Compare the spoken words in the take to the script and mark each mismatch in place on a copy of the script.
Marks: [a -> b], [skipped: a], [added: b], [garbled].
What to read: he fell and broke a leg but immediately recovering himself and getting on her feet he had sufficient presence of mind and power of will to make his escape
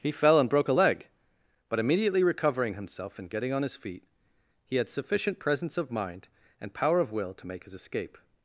he fell and broke a leg but immediately recovering himself and getting on [her -> his] feet he had sufficient presence of mind and power of will to make his escape